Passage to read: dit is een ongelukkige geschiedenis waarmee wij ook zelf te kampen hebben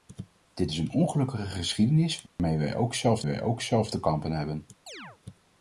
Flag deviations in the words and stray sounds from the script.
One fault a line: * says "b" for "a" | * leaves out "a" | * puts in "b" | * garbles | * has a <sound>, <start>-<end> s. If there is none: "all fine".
* has a dropout, 2.3-2.4 s
* puts in "wij ook zelf"
* has a chirp, 4.9-5.2 s